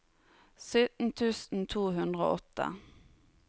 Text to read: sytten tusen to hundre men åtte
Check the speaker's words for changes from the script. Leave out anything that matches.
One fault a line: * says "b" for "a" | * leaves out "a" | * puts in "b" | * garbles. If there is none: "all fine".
* says "og" for "men"